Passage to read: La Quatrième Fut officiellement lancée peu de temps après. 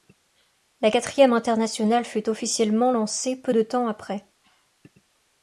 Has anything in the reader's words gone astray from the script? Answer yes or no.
yes